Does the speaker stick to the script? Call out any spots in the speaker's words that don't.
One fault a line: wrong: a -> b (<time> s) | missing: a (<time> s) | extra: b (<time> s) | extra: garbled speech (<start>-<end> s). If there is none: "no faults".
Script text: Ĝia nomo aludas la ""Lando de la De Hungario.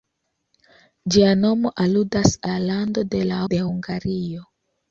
no faults